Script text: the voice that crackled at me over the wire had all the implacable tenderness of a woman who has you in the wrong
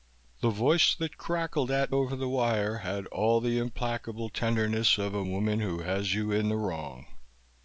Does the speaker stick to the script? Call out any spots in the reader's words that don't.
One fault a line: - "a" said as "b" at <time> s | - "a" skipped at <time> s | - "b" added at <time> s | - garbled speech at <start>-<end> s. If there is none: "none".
- "me" skipped at 1.9 s